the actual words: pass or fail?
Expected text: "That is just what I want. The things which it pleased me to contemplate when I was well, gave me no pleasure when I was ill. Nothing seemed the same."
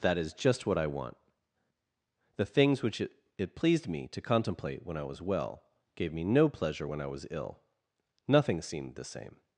fail